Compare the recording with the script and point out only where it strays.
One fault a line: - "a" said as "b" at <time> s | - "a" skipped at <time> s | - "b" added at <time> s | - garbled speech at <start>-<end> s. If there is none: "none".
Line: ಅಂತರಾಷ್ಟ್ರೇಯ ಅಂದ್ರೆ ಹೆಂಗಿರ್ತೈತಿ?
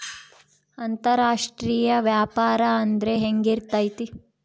- "ವ್ಯಾಪಾರ" added at 2.0 s